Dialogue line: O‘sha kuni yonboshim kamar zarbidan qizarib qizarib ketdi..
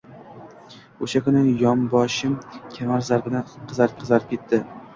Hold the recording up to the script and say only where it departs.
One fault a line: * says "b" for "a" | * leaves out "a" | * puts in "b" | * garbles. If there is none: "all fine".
all fine